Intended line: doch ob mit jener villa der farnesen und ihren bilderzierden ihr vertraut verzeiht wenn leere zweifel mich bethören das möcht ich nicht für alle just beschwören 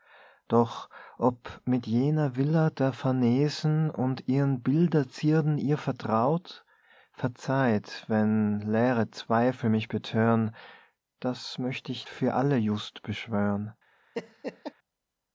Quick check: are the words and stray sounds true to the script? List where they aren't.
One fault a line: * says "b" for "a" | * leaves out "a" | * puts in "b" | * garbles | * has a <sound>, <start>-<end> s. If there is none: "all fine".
* leaves out "nicht"
* has a laugh, 14.2-14.7 s